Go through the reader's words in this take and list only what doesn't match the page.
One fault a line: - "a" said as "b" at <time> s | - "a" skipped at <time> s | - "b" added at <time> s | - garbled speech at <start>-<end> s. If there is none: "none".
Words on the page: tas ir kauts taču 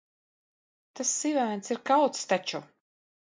- "sivēns" added at 1.2 s